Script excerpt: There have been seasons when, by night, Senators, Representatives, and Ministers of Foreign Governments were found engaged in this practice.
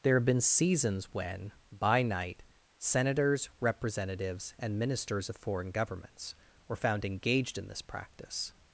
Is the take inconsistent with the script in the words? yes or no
no